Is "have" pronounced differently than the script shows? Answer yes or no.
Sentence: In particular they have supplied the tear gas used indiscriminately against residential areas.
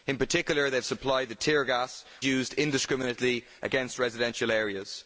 no